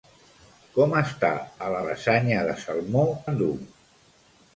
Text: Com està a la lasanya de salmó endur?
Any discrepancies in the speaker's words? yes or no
no